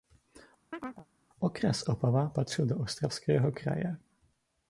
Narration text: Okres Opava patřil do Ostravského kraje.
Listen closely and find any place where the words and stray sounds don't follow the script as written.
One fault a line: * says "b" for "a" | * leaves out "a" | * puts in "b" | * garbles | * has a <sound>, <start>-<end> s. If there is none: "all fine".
* has a chirp, 0.7-1.1 s